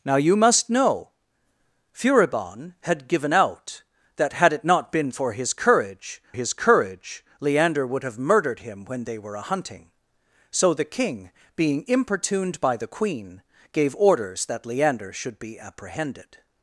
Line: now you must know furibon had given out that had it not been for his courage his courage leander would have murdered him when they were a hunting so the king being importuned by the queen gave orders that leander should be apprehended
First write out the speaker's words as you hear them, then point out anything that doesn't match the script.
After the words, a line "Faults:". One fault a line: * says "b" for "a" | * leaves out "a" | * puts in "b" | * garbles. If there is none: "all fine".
now you must know furibon had given out that had it not been for his courage his courage leander would have murdered him when they were a hunting so the king being importuned by the queen gave orders that leander should be apprehended
Faults:
all fine